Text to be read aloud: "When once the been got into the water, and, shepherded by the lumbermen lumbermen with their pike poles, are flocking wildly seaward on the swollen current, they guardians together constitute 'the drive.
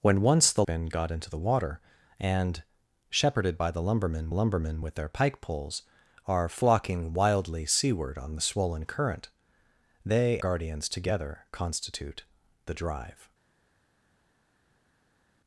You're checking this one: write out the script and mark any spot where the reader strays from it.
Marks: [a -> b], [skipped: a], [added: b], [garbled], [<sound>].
"When once the been got into the water, and, shepherded by the lumbermen lumbermen with their pike poles, are flocking wildly seaward on the swollen current, they guardians together constitute 'the drive.